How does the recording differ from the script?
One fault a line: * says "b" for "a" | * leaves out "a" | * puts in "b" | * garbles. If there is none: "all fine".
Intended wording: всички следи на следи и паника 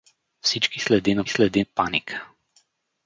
all fine